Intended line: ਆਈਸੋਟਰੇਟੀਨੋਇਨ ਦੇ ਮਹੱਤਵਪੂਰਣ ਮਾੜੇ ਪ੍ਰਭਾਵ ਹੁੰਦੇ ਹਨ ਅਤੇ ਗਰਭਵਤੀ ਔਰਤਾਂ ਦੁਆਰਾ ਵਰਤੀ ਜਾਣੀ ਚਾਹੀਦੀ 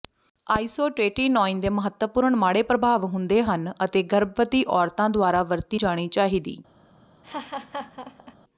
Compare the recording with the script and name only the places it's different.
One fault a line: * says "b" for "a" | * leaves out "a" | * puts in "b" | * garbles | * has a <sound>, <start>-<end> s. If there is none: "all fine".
* has a laugh, 7.2-8.4 s